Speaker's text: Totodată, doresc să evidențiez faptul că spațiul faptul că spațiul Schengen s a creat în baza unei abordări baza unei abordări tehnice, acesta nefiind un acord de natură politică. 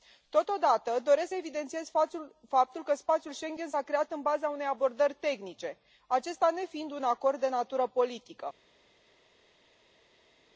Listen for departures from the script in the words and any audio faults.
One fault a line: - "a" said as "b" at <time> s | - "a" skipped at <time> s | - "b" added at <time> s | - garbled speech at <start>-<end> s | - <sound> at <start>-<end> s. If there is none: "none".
- "faptul că spațiul" skipped at 3.3 s
- "baza unei abordări" skipped at 5.1 s